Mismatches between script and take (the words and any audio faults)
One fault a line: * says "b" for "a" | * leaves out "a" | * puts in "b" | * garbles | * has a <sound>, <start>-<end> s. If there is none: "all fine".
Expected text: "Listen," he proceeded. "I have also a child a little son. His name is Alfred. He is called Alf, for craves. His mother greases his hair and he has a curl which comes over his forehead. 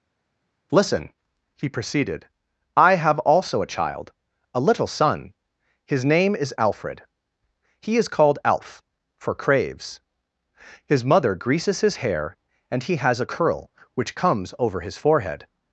all fine